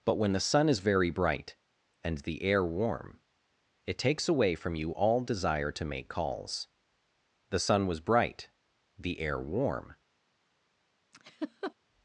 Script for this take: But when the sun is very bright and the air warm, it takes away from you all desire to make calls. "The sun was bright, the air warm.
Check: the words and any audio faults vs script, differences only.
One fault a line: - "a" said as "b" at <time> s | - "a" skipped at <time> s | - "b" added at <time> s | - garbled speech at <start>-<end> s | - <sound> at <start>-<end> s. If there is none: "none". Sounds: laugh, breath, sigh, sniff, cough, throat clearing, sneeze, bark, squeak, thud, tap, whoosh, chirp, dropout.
- laugh at 11.1-11.7 s